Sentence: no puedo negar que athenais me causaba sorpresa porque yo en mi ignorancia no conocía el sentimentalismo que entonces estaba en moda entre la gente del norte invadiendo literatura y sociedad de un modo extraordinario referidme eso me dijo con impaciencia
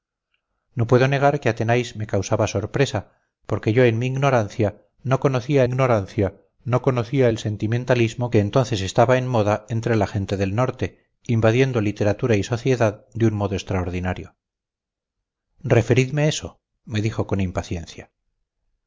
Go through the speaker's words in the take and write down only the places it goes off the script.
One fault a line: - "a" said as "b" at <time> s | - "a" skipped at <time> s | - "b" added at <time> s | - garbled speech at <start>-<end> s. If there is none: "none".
- "ignorancia no conocía" added at 5.6 s